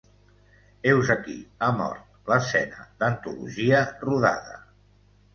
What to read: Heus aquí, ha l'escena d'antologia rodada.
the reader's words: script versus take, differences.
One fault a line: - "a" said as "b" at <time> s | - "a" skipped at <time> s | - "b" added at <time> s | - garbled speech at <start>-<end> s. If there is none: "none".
- "mort" added at 1.8 s